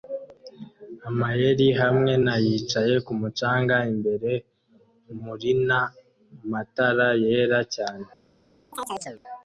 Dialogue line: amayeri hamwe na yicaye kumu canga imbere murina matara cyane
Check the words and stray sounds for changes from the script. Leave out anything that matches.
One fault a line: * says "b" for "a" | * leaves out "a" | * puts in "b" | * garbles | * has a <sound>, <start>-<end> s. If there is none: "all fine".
* puts in "yera"
* has a chirp, 8.7-9.2 s